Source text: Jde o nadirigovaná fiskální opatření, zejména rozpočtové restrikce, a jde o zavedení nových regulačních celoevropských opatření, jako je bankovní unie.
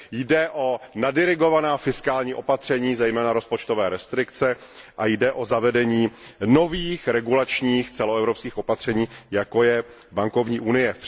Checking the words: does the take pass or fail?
pass